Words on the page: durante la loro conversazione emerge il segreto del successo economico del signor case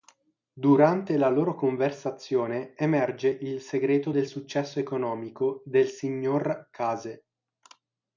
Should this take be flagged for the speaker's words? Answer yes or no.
no